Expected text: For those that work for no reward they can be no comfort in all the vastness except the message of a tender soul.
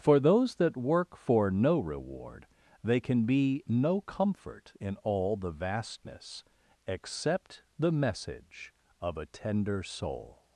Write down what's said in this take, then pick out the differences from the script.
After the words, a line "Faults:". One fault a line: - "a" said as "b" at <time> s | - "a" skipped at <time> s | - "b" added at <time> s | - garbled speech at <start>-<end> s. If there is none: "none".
For those that work for no reward they can be no comfort in all the vastness except the message of a tender soul.
Faults:
none